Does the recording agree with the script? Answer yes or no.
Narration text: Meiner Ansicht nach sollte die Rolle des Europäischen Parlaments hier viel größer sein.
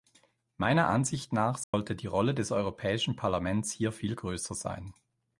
yes